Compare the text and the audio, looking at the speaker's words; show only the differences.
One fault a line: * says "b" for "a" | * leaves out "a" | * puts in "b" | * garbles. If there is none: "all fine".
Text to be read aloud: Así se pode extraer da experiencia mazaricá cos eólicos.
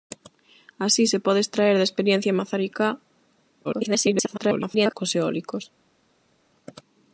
* garbles